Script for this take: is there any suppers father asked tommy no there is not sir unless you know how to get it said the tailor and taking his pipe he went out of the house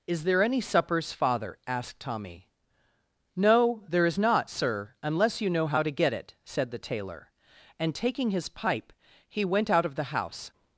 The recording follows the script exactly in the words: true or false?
true